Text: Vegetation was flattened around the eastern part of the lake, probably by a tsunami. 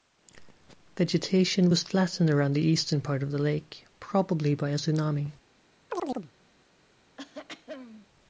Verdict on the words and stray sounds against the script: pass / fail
fail